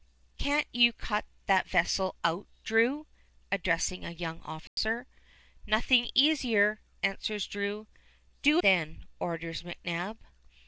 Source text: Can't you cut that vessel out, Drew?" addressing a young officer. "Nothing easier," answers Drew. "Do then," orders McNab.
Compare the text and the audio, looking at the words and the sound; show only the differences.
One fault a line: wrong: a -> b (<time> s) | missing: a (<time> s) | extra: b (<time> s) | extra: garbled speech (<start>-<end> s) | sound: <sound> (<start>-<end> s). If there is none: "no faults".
sound: dropout (4.7-4.8 s)